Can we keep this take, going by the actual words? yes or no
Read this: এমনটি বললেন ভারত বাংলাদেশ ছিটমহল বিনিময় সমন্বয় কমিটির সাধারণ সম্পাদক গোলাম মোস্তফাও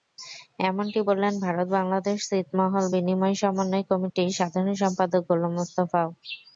yes